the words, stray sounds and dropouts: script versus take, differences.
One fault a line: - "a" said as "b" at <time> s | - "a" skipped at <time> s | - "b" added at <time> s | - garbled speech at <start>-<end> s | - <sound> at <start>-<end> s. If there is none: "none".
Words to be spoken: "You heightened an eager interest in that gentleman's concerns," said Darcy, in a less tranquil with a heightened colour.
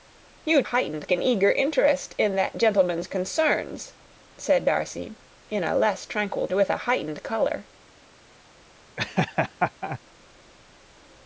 - laugh at 9.0-10.0 s